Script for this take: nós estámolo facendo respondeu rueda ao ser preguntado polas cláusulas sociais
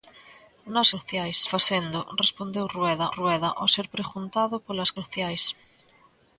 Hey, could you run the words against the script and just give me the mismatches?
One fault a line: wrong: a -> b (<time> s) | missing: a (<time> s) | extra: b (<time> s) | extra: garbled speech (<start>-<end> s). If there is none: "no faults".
wrong: estámolo -> sociais (0.9 s)
extra: rueda (3.2 s)
missing: cláusulas (4.9 s)